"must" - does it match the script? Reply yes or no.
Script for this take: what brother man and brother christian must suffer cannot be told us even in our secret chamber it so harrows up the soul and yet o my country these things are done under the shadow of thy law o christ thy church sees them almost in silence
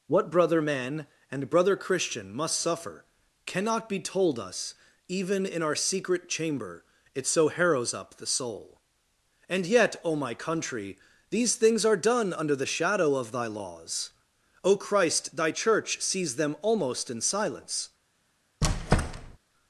yes